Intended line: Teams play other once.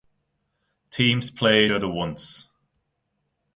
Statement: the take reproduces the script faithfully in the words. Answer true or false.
true